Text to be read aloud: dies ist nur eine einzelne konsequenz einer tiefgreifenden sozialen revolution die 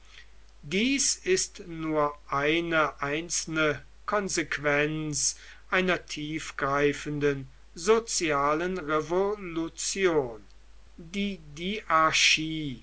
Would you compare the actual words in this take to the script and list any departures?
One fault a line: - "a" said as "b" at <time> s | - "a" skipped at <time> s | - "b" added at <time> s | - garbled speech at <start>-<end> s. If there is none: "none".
none